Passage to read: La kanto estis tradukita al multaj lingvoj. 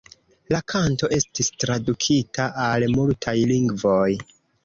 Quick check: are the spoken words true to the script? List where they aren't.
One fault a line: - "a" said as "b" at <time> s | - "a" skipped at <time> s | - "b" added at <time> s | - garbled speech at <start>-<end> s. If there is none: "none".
none